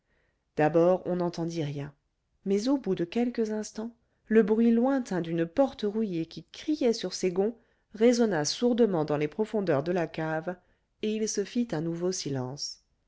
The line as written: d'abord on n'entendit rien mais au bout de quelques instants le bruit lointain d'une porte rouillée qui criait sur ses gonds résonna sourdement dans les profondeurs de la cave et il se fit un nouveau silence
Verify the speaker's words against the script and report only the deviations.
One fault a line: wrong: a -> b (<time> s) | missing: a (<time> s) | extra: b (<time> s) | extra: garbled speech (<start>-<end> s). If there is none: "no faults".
no faults